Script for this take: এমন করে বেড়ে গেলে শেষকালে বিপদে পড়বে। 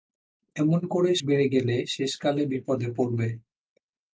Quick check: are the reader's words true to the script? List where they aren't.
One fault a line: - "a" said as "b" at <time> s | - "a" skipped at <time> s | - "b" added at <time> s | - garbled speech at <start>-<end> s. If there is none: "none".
none